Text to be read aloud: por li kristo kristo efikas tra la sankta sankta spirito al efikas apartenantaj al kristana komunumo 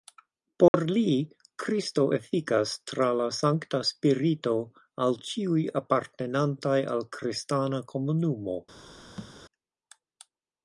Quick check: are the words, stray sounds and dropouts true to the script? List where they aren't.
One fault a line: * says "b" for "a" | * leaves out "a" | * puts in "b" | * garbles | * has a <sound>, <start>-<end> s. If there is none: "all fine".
* has a dropout, 0.7-0.7 s
* leaves out "kristo"
* leaves out "sankta"
* says "ĉiuj" for "efikas"
* has a thud, 9.2-9.4 s